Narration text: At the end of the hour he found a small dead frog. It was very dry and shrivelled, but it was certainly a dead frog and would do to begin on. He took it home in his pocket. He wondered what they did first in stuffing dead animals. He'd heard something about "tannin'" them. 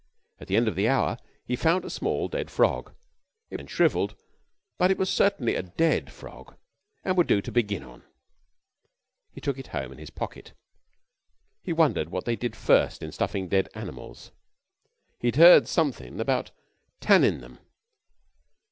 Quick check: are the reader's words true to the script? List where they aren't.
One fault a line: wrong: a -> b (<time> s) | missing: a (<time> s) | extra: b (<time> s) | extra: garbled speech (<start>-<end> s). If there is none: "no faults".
missing: was very dry (3.6 s)